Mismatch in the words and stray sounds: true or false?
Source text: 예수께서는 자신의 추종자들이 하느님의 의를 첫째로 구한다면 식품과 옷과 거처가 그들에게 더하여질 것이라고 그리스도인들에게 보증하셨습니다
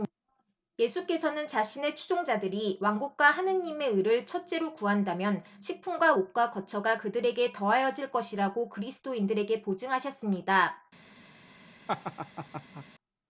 true